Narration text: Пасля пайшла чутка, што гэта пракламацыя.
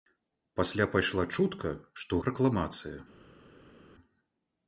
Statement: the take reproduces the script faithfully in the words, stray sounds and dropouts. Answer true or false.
false